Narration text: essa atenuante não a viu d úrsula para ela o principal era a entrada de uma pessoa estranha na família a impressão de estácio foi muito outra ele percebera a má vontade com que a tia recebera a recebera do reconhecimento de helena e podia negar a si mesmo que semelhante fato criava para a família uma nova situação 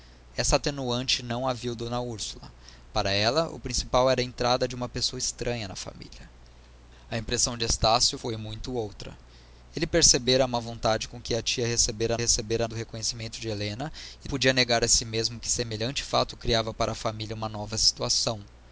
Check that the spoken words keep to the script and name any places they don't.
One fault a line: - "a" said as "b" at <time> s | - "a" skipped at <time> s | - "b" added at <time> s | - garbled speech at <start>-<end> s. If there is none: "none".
none